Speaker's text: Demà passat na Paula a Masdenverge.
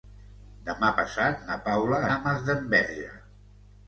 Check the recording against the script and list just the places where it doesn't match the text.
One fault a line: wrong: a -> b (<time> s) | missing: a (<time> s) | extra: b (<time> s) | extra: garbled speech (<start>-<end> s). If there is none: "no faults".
no faults